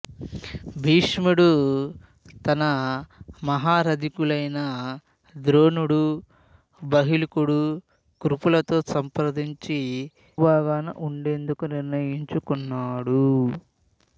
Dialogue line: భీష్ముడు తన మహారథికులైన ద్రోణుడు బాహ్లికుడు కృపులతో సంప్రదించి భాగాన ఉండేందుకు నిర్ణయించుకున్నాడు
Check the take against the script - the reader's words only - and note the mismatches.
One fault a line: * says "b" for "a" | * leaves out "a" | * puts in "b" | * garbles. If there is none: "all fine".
all fine